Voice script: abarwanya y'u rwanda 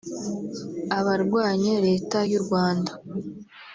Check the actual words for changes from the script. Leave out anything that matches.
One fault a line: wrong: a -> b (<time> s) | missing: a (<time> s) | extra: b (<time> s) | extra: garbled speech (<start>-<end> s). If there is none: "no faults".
extra: leta (1.9 s)